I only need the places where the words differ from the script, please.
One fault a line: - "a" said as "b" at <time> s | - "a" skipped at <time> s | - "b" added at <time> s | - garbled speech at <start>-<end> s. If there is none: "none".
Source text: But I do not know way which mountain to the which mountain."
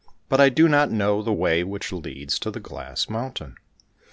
- "the" added at 1.2 s
- "mountain" said as "leads" at 1.9 s
- "which" said as "glass" at 2.6 s